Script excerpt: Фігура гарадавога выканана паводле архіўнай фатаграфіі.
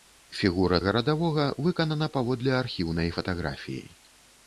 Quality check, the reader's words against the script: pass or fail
pass